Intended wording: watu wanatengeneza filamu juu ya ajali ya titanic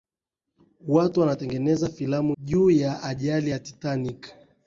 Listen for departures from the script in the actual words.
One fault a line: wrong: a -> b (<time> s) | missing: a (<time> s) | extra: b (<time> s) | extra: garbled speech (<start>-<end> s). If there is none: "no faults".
no faults